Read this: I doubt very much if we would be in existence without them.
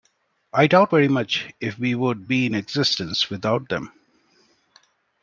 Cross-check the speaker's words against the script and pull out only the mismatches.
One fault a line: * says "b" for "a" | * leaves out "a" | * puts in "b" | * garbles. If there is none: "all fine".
all fine